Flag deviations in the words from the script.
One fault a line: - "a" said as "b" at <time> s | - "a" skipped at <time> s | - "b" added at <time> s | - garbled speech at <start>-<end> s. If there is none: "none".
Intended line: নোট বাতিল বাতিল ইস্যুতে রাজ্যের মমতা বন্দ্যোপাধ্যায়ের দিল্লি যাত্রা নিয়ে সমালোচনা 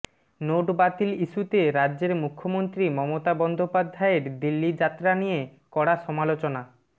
- "বাতিল" skipped at 1.1 s
- "মুখ্যমন্ত্রী" added at 2.2 s
- "কড়া" added at 5.7 s